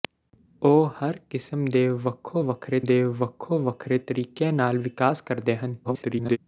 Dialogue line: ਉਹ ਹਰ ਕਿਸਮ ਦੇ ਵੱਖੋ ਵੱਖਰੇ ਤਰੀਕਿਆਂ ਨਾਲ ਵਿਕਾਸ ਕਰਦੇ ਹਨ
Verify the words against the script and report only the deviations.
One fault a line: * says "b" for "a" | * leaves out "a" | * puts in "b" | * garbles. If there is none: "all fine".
* puts in "ਦੇ ਵੱਖੋ ਵੱਖਰੇ"
* garbles